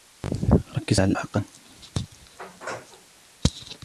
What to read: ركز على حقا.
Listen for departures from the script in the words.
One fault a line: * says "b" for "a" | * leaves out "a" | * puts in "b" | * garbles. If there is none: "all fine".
all fine